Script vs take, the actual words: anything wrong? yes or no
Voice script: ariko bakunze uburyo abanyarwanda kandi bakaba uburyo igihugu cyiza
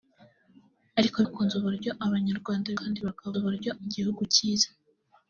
no